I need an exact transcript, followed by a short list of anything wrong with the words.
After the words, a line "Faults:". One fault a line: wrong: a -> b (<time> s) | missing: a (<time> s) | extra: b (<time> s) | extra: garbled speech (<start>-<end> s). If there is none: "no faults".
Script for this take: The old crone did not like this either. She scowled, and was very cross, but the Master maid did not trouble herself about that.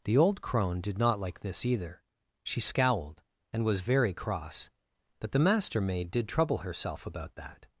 The old crone did not like this either. She scowled, and was very cross, but the Master maid did trouble herself about that.
Faults:
missing: not (6.3 s)